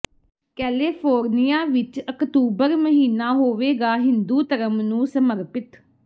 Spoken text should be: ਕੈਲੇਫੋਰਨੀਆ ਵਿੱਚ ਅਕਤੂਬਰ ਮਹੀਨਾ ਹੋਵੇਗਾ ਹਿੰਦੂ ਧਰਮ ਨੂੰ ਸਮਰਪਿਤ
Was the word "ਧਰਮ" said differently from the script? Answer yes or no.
no